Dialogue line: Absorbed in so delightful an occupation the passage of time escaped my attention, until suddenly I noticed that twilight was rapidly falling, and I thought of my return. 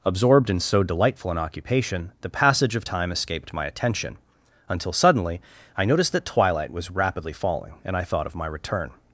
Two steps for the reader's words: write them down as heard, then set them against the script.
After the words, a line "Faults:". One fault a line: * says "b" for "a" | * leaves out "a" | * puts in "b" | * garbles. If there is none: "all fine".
Absorbed in so delightful an occupation the passage of time escaped my attention, until suddenly I noticed that twilight was rapidly falling, and I thought of my return.
Faults:
all fine